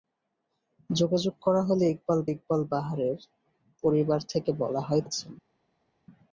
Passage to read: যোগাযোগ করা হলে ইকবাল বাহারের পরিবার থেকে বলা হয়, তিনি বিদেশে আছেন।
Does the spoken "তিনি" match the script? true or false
false